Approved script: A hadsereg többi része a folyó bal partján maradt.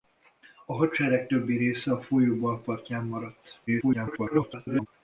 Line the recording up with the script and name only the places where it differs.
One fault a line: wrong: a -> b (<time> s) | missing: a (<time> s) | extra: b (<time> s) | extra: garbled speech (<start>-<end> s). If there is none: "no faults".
extra: garbled speech (3.7-4.9 s)